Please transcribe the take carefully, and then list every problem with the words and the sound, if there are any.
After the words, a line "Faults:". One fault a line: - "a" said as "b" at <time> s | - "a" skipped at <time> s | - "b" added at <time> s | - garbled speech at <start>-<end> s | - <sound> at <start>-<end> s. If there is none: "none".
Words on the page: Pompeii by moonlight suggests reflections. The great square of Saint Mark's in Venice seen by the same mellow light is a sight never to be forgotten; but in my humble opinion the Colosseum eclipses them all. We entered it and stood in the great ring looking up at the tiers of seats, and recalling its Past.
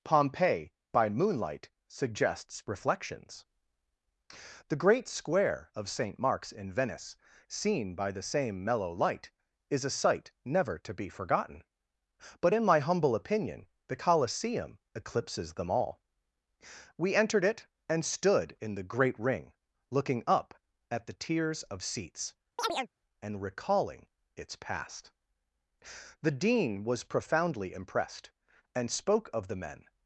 Pompeii by moonlight suggests reflections. The great square of Saint Mark's in Venice seen by the same mellow light is a sight never to be forgotten; but in my humble opinion the Colosseum eclipses them all. We entered it and stood in the great ring looking up at the tiers of seats, and recalling its Past. The Dean was profoundly impressed, and spoke of the men
Faults:
- chirp at 22.6-22.9 s
- "The Dean was profoundly impressed and spoke of the men" added at 26.2 s